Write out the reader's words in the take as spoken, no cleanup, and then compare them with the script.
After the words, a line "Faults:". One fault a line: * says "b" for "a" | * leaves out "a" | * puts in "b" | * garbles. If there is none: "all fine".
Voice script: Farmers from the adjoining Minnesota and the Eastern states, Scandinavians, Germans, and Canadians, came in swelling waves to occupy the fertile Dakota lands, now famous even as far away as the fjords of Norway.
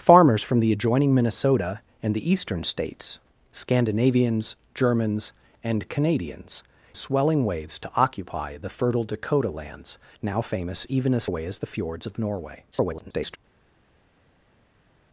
Farmers from the adjoining Minnesota and the Eastern states, Scandinavians, Germans, and Canadians, swelling waves to occupy the fertile Dakota lands, now famous even as away as the fjords of Norway. [garbled]
Faults:
* leaves out "came in"
* leaves out "far"
* garbles